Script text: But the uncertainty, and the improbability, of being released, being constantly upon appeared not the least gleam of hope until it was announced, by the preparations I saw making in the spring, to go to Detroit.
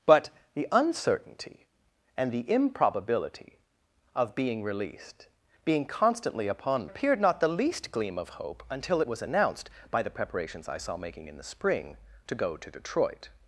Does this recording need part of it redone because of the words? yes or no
no